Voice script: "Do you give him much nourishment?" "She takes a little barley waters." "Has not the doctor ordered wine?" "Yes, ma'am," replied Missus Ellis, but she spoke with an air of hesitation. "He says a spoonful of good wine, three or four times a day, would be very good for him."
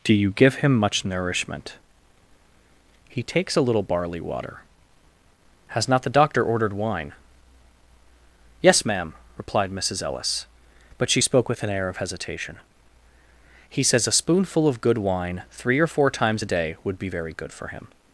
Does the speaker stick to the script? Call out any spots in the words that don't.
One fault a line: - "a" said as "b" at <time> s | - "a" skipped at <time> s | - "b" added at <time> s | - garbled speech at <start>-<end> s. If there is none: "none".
- "She" said as "He" at 3.0 s
- "waters" said as "water" at 4.2 s